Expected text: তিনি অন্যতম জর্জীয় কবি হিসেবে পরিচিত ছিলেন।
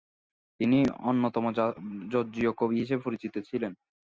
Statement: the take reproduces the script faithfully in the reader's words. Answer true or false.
true